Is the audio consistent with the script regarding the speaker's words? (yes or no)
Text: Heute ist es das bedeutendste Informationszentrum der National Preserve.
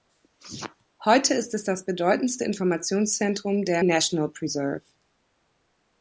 yes